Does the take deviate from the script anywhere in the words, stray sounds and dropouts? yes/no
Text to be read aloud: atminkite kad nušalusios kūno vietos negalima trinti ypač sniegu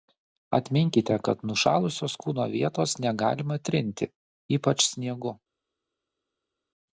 no